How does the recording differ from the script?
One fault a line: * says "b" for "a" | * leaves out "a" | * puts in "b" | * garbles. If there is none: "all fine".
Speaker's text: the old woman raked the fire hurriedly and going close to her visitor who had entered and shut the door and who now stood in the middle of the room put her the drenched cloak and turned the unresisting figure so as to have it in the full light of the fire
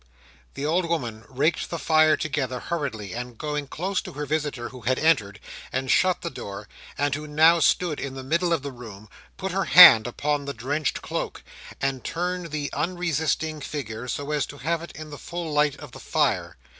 * puts in "together"
* puts in "hand upon"